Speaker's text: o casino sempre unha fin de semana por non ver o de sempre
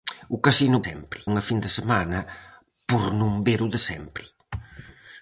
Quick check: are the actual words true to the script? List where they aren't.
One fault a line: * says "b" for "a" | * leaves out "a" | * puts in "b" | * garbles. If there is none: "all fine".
all fine